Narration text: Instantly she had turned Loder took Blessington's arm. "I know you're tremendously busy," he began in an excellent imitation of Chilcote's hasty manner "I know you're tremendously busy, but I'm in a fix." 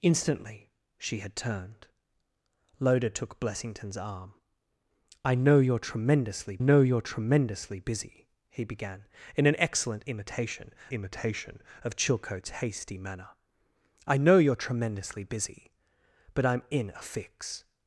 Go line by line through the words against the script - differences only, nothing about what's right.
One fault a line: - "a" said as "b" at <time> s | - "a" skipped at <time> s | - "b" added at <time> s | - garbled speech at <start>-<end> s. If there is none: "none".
- "know you're tremendously" added at 6.6 s
- "imitation" added at 10.9 s